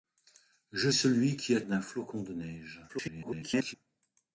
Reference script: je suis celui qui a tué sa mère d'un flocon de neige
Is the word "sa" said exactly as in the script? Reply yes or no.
no